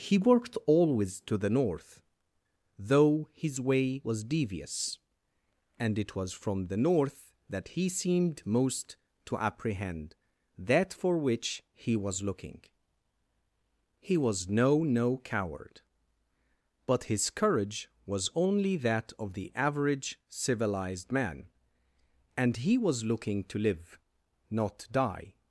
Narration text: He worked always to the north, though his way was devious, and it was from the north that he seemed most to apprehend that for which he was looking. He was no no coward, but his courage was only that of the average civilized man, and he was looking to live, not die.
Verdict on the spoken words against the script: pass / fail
pass